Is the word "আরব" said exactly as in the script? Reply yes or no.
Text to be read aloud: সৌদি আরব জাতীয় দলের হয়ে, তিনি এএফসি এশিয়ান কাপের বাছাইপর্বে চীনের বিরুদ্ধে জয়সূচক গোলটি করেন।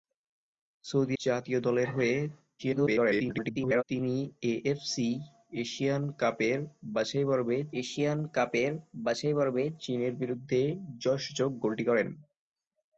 no